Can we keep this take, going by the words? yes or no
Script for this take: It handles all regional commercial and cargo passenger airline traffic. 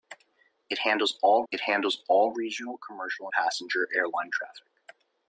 no